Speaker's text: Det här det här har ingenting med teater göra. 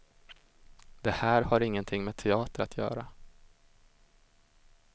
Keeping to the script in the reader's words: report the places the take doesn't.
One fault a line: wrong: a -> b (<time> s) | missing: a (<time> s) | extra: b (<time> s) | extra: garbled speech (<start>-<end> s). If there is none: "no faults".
missing: det här (1.4 s)
extra: att (2.6 s)